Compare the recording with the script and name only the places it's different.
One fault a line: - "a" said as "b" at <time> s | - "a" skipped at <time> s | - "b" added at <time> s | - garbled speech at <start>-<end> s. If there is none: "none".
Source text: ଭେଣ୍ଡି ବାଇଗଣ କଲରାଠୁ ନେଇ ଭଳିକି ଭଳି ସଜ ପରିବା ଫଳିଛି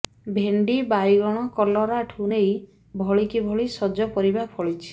none